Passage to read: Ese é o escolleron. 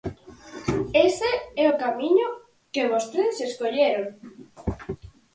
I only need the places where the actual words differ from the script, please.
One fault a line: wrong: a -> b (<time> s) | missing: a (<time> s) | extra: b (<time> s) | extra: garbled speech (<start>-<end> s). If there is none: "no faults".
extra: camiño que vostedes (1.8 s)